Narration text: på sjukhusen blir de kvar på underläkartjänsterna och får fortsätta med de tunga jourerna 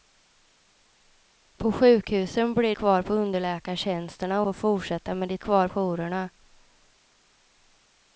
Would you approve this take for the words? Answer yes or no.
no